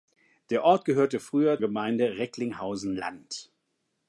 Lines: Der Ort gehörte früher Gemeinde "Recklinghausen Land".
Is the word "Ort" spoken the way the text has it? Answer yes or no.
yes